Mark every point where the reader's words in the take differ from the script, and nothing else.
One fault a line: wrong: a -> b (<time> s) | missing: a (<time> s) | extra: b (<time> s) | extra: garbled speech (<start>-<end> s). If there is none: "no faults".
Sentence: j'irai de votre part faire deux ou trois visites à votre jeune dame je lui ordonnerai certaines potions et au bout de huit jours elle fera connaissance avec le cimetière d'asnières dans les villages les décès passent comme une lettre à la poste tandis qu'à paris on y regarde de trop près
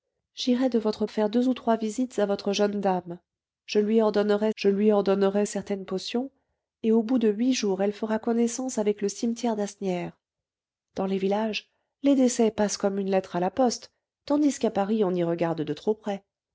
missing: part (1.1 s)
extra: je lui ordonnerai (4.5 s)